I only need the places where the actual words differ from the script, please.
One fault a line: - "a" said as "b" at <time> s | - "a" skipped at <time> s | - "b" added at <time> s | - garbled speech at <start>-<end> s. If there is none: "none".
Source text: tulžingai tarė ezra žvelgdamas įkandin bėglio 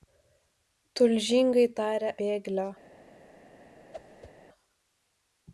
- "ezra žvelgdamas įkandin" skipped at 2.1 s